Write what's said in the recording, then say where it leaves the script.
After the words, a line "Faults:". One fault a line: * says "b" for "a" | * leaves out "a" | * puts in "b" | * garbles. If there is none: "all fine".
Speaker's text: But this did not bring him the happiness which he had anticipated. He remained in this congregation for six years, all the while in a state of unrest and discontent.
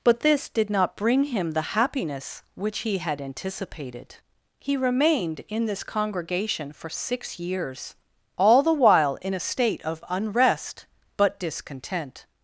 But this did not bring him the happiness which he had anticipated. He remained in this congregation for six years, all the while in a state of unrest but discontent.
Faults:
* says "but" for "and"